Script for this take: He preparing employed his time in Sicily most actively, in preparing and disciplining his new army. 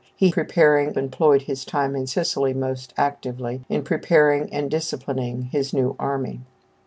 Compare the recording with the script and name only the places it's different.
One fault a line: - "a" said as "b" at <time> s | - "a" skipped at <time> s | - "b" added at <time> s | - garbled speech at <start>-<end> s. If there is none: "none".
none